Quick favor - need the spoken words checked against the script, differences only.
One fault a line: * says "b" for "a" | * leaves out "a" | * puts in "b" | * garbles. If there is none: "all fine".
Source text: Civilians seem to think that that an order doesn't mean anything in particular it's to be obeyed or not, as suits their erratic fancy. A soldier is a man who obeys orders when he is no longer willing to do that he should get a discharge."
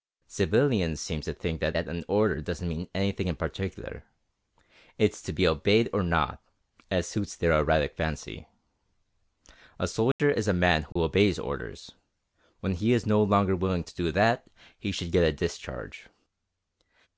all fine